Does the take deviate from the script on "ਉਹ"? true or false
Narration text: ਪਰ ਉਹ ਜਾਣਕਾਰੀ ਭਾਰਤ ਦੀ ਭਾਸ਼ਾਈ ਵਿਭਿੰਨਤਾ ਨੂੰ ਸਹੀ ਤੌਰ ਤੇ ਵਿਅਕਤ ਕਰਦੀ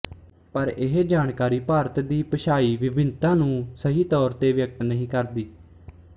true